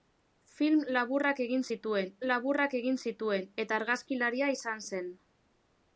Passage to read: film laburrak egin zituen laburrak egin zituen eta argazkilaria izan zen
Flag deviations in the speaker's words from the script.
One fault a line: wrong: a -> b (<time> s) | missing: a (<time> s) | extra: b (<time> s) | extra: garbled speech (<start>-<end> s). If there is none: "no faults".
no faults